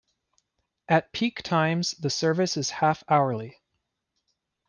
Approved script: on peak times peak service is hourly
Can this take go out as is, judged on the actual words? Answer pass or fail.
fail